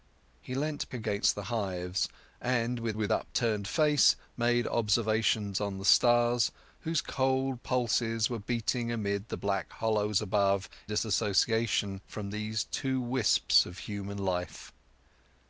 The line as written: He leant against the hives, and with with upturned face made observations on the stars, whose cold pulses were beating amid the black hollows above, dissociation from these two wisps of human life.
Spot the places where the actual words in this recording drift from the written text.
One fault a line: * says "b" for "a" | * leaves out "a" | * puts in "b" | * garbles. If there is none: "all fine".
all fine